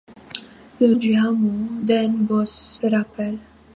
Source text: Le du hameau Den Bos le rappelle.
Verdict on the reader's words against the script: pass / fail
pass